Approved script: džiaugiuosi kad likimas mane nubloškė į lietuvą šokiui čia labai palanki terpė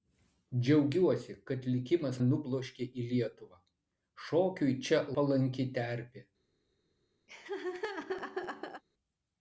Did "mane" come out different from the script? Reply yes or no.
yes